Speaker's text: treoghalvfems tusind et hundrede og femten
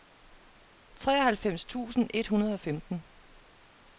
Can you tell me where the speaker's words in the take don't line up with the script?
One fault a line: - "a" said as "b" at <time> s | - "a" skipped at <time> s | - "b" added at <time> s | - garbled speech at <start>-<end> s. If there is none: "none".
none